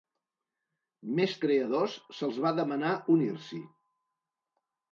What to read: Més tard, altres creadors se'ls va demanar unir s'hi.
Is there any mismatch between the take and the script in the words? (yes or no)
yes